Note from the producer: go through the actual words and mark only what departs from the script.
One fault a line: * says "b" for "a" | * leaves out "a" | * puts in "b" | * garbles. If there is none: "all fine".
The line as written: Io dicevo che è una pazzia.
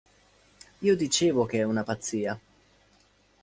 all fine